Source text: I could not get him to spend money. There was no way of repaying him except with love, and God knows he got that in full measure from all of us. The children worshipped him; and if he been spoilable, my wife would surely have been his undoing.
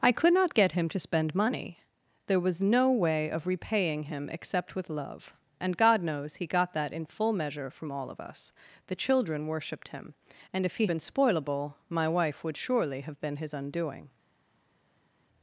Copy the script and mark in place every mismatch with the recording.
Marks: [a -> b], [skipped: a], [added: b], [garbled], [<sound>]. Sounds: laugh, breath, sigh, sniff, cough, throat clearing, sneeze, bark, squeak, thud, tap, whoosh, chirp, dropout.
I could not get him to spend money. There was no way of repaying him except with love, and God knows he got that in full measure from all of us. The children worshipped him; and if he been spoilable, my wife would surely have been his undoing.